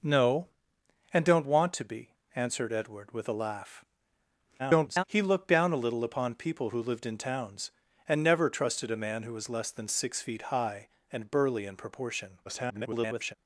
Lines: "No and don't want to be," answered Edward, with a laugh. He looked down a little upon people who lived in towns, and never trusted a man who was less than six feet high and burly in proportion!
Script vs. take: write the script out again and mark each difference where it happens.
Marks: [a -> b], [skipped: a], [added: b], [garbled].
"No and don't want to be," answered Edward, with a laugh. [garbled] He looked down a little upon people who lived in towns, and never trusted a man who was less than six feet high and burly in proportion! [garbled]